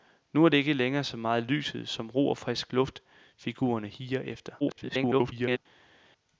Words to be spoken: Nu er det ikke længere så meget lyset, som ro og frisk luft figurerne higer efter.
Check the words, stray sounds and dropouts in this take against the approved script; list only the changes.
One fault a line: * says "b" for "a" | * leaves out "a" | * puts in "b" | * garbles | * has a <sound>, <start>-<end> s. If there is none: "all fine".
* garbles